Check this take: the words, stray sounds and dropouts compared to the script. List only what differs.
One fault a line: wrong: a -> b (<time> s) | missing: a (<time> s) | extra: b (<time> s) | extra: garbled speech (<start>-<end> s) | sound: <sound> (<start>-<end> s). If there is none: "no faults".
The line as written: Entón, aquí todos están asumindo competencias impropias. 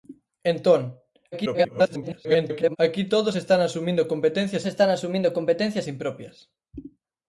extra: garbled speech (1.3-2.8 s)
extra: están asumindo competencias (4.6 s)